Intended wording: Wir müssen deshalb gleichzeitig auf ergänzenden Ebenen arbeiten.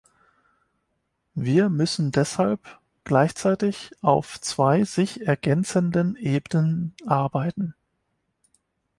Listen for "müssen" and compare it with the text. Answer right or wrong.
right